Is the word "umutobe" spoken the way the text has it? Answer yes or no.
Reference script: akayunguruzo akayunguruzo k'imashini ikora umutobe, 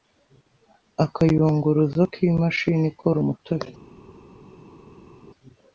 yes